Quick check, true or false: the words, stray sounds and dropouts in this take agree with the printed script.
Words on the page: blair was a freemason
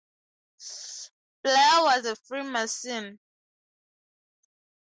true